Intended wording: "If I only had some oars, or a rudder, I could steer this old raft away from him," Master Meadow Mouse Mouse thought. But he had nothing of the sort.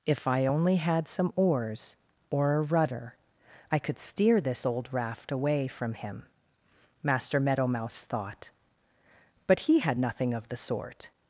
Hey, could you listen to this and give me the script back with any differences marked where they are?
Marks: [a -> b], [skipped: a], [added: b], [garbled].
"If I only had some oars, or a rudder, I could steer this old raft away from him," Master Meadow Mouse [skipped: Mouse] thought. But he had nothing of the sort.